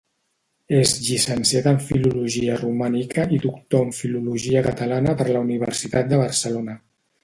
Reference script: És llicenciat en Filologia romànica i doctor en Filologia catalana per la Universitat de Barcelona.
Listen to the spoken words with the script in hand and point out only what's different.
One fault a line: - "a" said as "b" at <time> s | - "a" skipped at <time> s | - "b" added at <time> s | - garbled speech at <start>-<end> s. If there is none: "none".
none